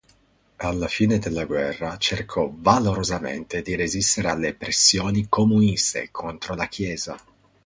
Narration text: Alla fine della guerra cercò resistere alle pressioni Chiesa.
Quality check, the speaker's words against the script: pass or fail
fail